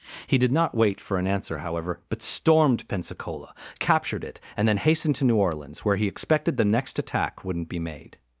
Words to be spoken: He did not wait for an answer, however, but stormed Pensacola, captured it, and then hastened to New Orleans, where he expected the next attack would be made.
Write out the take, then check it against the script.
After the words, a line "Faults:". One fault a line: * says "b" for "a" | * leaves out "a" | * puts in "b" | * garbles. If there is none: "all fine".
He did not wait for an answer, however, but stormed Pensacola, captured it, and then hastened to New Orleans, where he expected the next attack wouldn't be made.
Faults:
* says "wouldn't" for "would"